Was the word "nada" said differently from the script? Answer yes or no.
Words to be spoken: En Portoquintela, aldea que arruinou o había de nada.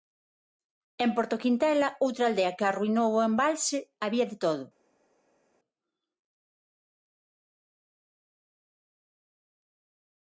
yes